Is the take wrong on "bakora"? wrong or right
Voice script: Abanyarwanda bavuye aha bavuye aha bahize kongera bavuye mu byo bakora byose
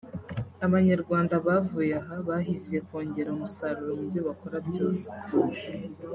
right